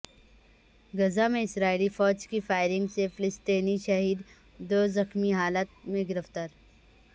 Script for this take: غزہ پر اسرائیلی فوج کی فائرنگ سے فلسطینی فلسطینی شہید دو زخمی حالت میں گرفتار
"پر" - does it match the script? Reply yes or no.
no